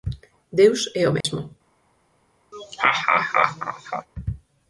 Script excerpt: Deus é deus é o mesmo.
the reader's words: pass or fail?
fail